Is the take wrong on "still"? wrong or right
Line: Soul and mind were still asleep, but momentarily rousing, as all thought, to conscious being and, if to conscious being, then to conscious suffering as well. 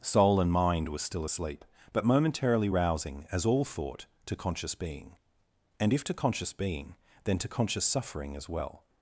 right